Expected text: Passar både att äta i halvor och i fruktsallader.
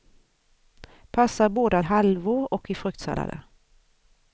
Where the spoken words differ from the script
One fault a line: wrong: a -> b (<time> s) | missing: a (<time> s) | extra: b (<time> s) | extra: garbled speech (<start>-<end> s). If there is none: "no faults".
missing: äta (1.9 s)